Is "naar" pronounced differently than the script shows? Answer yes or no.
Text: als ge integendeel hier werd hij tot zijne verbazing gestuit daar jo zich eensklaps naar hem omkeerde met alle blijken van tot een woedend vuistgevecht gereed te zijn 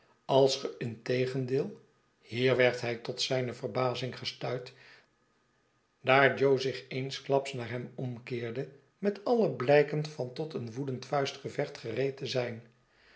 no